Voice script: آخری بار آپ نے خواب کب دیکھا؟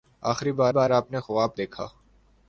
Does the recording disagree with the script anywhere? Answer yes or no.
yes